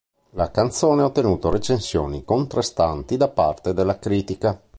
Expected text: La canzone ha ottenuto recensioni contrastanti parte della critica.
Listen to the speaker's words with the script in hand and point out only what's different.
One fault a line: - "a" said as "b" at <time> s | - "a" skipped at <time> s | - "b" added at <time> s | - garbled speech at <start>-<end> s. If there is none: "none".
- "da" added at 3.2 s